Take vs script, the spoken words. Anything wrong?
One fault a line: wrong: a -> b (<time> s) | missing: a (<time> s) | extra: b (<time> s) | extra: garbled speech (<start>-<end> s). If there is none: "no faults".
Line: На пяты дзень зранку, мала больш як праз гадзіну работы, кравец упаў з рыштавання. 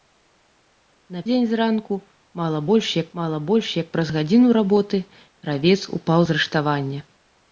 missing: пяты (1.2 s)
extra: мала больш як (3.2 s)